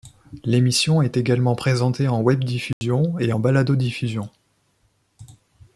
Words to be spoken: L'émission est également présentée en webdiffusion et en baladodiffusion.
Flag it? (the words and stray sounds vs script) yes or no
yes